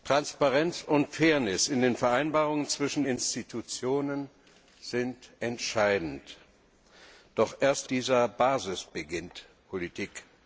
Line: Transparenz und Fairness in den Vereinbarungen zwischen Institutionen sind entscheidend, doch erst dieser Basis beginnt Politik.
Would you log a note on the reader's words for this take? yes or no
no